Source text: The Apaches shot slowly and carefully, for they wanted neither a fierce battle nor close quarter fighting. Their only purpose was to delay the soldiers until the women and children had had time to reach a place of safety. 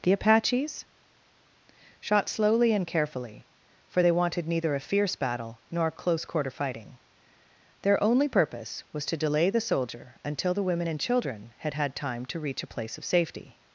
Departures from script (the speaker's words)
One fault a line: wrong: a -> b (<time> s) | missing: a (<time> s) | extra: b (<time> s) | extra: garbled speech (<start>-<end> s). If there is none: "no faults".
wrong: soldiers -> soldier (9.6 s)